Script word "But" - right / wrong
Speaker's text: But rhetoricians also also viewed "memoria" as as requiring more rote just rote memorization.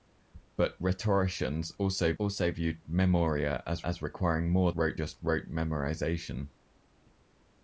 right